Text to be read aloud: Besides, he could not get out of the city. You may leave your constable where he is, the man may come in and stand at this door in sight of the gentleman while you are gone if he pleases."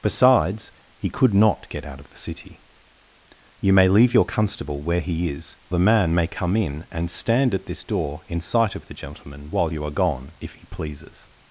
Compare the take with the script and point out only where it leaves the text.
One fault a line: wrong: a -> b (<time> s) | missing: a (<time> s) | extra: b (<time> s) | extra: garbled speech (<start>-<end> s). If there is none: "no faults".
no faults